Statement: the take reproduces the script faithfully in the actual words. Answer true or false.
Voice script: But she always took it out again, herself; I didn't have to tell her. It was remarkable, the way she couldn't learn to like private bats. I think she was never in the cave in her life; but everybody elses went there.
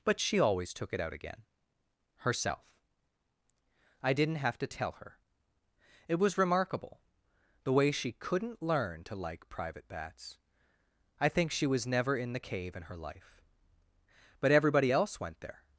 false